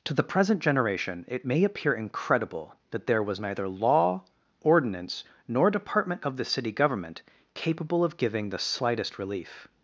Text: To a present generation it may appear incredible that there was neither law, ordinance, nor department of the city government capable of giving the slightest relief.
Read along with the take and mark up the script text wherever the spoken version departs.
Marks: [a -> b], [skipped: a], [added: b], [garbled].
To [a -> the] present generation it may appear incredible that there was neither law, ordinance, nor department of the city government capable of giving the slightest relief.